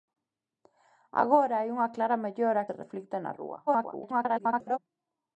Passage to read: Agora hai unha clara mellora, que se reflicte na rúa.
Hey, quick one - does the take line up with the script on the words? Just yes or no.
no